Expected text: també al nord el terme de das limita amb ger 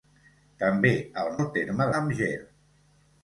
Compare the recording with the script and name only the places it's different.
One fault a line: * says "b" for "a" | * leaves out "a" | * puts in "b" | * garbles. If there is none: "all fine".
* leaves out "nord"
* leaves out "de das limita"